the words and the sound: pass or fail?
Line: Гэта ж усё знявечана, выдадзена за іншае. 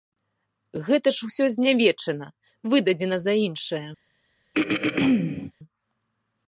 fail